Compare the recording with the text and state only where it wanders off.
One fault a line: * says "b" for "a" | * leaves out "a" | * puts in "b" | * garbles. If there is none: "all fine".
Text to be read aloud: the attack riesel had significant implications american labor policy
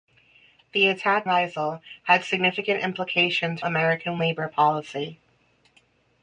all fine